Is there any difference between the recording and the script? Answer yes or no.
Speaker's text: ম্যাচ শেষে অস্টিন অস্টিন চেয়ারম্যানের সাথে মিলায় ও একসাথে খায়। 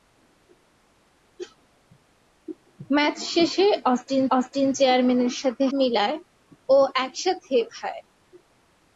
no